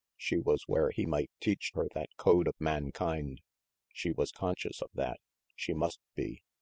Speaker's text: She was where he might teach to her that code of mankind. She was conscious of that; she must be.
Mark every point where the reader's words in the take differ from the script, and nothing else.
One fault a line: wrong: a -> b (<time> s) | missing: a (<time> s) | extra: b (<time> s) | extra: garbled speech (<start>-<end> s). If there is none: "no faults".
missing: to (1.8 s)